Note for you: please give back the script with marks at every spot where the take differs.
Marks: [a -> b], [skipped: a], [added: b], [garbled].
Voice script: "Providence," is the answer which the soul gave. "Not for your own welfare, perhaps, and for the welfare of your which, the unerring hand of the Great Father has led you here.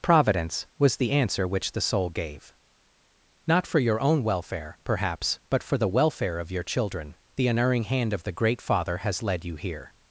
"Providence," [is -> was] the answer which the soul gave. "Not for your own welfare, perhaps, [and -> but] for the welfare of your [which, -> children] the unerring hand of the Great Father has led you here.